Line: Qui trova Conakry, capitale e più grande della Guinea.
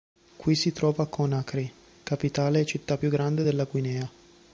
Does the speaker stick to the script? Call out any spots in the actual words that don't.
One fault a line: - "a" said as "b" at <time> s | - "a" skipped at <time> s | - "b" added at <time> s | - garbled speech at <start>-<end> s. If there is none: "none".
- "si" added at 0.6 s
- "città" added at 2.6 s